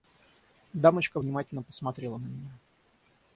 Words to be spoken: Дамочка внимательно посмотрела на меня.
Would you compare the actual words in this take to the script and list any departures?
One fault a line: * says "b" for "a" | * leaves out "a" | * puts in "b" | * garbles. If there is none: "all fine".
all fine